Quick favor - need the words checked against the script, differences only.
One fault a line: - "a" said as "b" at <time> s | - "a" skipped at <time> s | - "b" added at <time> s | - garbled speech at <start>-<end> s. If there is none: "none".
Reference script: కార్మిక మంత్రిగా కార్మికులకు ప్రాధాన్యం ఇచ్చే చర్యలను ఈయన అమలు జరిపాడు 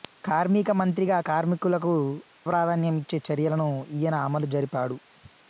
none